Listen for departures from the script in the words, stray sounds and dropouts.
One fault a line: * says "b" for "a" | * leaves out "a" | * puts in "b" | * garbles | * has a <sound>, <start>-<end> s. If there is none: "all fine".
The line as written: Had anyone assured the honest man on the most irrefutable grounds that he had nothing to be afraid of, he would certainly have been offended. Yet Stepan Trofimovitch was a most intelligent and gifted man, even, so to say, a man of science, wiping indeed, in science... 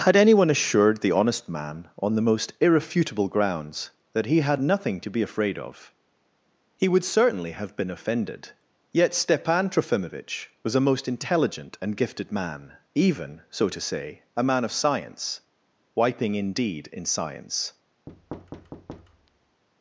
* has a thud, 18.1-19.6 s